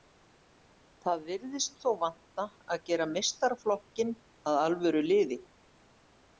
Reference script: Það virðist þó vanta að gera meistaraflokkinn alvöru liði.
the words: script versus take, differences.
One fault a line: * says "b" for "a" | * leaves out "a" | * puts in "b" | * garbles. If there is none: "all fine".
* puts in "að"